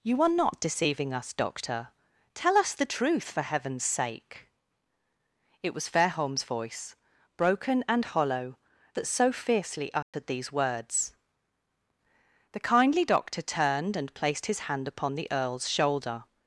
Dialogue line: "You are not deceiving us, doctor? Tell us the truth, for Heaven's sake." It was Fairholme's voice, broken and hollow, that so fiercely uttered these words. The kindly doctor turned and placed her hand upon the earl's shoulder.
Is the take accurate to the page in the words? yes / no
no